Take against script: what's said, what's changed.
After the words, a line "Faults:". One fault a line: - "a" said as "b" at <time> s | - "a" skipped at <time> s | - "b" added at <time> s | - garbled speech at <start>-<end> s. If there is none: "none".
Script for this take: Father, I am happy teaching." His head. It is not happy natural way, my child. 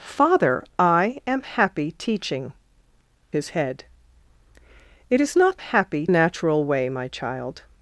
Father, I am happy teaching." His head. It is not happy natural way, my child.
Faults:
none